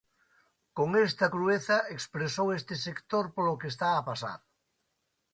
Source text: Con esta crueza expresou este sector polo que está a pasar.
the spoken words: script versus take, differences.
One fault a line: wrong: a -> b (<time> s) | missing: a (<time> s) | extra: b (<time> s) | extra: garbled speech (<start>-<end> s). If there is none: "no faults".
no faults